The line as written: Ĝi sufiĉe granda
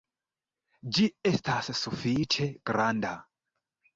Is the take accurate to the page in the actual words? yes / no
no